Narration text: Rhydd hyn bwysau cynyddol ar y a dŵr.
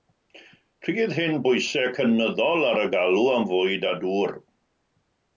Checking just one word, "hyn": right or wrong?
right